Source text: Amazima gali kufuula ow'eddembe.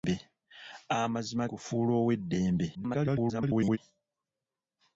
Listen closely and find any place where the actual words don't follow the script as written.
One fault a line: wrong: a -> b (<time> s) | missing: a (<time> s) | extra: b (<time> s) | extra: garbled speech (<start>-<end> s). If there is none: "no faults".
missing: gali (1.4 s)
extra: garbled speech (2.7-3.8 s)